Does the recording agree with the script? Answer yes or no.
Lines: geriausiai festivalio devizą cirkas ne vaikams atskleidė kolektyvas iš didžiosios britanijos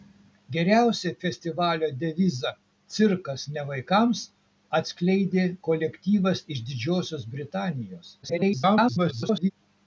no